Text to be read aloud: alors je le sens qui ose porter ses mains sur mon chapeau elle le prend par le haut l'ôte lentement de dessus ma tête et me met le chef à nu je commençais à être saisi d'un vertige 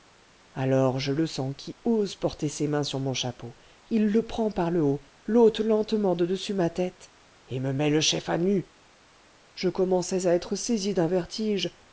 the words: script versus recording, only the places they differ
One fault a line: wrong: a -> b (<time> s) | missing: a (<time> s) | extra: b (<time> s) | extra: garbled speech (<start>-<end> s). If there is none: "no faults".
wrong: elle -> il (3.9 s)